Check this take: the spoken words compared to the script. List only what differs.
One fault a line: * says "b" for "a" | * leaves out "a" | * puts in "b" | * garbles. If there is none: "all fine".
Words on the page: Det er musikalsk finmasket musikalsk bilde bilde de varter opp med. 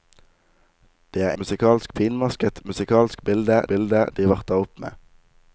all fine